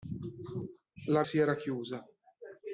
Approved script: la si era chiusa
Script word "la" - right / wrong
right